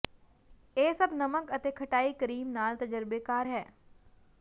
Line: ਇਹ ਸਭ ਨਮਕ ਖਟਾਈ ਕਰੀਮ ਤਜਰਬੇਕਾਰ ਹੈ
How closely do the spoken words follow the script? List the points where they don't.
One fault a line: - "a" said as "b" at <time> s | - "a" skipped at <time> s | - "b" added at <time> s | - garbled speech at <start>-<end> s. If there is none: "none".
- "ਅਤੇ" added at 1.5 s
- "ਨਾਲ" added at 2.5 s